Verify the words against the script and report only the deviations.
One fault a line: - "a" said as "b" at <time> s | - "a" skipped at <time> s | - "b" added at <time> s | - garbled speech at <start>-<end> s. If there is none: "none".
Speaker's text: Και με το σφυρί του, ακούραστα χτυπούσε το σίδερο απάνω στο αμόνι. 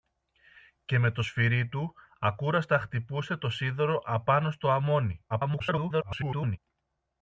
- garbled speech at 5.3-6.6 s